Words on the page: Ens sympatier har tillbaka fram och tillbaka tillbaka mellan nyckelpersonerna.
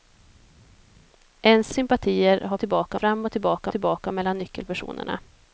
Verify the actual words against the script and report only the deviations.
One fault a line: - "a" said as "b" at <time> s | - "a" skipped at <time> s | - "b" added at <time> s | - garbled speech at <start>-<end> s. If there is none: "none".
none